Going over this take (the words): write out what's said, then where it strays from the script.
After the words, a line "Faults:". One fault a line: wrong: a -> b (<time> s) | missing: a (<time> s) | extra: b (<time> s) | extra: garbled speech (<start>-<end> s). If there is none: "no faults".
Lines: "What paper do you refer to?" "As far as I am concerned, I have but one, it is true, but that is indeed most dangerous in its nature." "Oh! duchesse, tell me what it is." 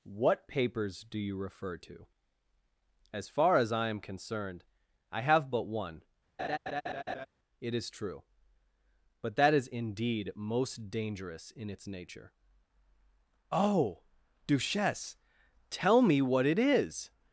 "What papers do you refer to?" "As far as I am concerned, I have but one, it is true, but that is indeed most dangerous in its nature." "Oh! duchesse, tell me what it is."
Faults:
wrong: paper -> papers (0.5 s)